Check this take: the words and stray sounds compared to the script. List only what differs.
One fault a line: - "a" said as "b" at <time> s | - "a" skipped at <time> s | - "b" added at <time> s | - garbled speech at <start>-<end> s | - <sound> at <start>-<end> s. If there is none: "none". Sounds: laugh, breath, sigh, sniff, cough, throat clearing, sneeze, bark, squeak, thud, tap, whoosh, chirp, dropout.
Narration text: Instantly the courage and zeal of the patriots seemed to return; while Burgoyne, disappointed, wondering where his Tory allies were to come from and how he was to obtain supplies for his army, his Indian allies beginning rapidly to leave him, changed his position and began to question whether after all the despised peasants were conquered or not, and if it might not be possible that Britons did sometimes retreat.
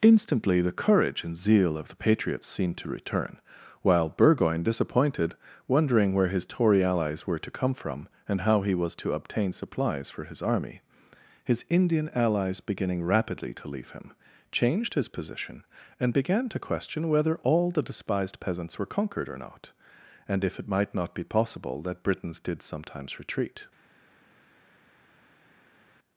- "after" skipped at 17.4 s